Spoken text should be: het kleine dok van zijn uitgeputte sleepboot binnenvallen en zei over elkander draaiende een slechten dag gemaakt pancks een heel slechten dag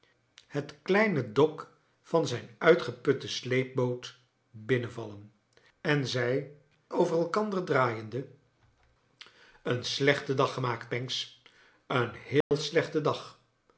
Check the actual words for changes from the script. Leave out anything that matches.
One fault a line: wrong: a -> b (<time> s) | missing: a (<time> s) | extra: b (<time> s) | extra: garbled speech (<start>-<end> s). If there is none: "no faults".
no faults